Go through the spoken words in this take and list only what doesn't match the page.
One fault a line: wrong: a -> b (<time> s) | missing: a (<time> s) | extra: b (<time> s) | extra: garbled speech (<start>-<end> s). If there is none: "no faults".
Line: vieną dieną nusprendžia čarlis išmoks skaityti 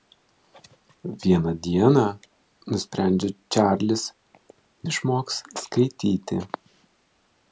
no faults